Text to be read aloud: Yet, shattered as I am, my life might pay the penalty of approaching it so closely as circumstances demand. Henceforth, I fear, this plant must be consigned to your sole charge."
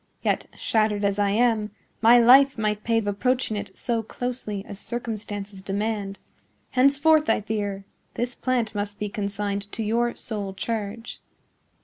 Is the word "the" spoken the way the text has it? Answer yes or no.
no